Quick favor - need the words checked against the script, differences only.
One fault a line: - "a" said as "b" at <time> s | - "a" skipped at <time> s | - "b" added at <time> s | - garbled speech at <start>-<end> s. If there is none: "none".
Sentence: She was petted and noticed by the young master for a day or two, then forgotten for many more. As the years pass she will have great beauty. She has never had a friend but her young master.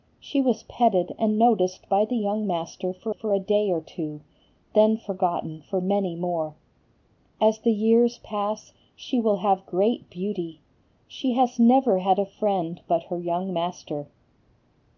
- "for" added at 3.1 s